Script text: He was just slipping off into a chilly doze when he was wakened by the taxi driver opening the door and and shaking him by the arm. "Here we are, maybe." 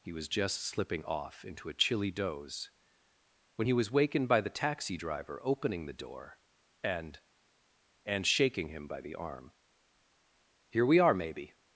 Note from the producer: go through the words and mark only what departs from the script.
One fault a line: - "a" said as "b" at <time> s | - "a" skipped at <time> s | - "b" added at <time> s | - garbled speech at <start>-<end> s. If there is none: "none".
none